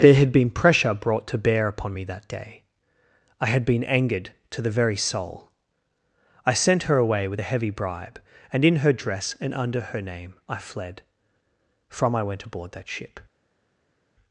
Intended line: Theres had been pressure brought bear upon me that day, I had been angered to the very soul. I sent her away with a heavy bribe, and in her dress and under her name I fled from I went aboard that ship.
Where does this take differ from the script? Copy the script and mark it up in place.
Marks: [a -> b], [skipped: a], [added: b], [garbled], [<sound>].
[Theres -> There] had been pressure brought [added: to] bear upon me that day, I had been angered to the very soul. I sent her away with a heavy bribe, and in her dress and under her name I fled from I went aboard that ship.